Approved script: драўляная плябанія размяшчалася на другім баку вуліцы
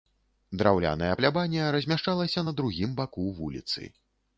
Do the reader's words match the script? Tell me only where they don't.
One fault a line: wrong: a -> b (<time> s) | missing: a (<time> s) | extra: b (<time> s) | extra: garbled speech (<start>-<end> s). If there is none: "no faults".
no faults